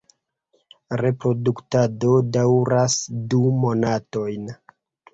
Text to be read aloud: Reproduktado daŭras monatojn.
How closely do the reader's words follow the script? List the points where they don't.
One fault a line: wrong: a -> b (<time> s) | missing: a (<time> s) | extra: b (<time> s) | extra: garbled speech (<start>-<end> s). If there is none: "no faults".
extra: du (3.3 s)